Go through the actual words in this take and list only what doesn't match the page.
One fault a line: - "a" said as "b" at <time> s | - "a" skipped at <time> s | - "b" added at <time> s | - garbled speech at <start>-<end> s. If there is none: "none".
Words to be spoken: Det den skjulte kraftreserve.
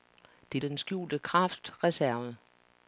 none